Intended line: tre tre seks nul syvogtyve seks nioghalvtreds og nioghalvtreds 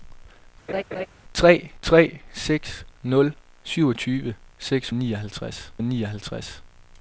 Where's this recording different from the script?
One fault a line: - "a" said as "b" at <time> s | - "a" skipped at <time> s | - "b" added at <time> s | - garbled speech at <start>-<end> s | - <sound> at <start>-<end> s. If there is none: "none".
- laugh at 0.7-1.1 s